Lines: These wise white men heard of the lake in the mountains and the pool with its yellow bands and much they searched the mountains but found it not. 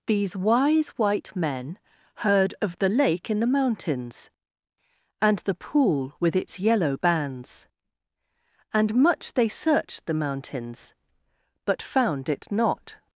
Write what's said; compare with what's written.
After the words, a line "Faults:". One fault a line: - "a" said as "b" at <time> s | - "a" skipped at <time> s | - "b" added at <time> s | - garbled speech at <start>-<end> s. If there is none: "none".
These wise white men heard of the lake in the mountains and the pool with its yellow bands and much they searched the mountains but found it not.
Faults:
none